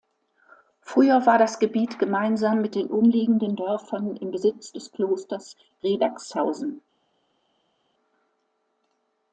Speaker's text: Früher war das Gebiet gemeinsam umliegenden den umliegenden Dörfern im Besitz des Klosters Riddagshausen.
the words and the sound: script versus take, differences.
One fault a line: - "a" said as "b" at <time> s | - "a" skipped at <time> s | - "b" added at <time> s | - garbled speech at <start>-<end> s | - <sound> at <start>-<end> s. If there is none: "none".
- "umliegenden" said as "mit" at 2.6 s